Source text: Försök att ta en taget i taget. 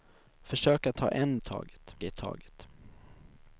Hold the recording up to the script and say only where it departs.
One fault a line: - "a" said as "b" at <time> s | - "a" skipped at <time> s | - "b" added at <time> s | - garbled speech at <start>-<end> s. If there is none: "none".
none